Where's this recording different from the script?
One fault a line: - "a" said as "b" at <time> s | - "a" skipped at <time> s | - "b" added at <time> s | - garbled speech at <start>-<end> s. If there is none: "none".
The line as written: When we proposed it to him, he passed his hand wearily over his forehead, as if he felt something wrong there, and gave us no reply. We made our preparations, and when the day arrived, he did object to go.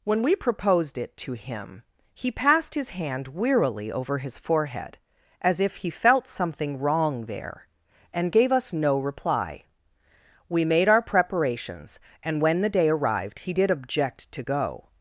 none